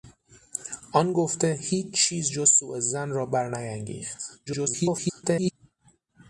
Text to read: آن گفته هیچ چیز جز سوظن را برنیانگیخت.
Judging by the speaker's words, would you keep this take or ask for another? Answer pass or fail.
fail